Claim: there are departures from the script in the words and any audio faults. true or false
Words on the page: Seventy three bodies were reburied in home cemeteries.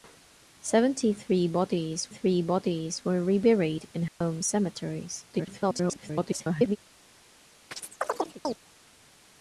true